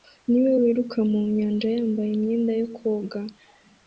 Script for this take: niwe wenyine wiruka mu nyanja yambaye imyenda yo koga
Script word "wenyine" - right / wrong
wrong